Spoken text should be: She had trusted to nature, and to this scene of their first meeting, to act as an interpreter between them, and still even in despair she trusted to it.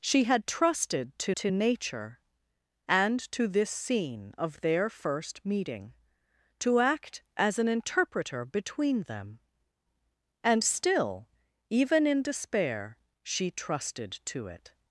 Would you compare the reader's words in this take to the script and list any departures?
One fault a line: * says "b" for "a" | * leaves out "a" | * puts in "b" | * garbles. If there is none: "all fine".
* puts in "to"